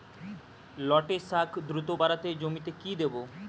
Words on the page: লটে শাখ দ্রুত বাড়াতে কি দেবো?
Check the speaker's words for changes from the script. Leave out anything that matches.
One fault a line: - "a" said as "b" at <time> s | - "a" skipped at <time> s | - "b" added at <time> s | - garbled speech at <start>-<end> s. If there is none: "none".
- "জমিতে" added at 2.3 s